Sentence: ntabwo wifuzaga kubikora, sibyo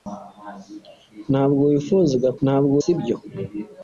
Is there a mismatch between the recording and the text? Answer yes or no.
yes